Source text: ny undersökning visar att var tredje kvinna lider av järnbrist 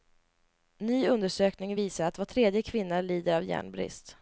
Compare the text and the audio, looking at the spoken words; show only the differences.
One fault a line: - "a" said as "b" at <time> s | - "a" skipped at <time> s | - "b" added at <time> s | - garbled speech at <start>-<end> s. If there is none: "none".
none